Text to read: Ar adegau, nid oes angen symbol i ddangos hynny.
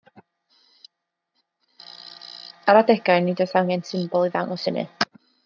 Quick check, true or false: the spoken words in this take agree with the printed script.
true